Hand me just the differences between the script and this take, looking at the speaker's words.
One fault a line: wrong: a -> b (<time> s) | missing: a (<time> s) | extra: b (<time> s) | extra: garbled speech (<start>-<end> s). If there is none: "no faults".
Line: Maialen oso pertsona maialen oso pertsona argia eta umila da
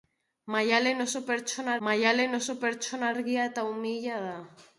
no faults